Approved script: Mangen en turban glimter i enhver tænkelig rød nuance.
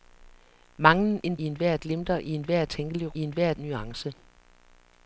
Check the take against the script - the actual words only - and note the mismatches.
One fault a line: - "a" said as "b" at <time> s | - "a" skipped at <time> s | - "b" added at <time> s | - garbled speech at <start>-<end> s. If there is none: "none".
- "turban" said as "enhver" at 1.4 s
- "rød" said as "enhver" at 3.2 s